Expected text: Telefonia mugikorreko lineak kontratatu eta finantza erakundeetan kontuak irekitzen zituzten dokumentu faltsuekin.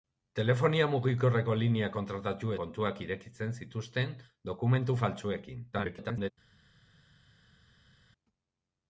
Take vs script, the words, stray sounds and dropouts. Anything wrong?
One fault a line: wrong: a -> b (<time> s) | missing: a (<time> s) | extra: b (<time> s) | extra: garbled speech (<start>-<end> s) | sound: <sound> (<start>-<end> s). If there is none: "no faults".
missing: eta finantza erakundeetan (2.5 s)
extra: garbled speech (5.7-6.3 s)